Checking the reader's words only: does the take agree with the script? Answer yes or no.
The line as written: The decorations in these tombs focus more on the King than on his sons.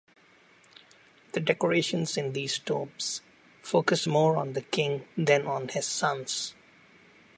yes